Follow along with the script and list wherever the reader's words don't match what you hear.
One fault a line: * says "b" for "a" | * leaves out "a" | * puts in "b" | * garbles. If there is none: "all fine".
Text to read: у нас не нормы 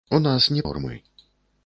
all fine